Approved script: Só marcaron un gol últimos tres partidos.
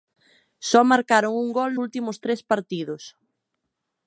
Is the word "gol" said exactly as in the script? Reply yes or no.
yes